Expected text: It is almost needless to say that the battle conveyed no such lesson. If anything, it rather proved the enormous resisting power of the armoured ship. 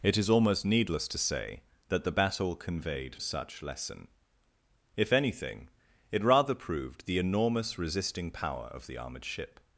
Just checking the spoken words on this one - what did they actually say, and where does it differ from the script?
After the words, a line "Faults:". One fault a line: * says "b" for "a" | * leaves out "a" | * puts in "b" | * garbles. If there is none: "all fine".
It is almost needless to say that the battle conveyed such lesson. If anything, it rather proved the enormous resisting power of the armoured ship.
Faults:
* leaves out "no"